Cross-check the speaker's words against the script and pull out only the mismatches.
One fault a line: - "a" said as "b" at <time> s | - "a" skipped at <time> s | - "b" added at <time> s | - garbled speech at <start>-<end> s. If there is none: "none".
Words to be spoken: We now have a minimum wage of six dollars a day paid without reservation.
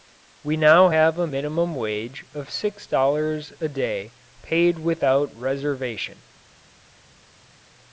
none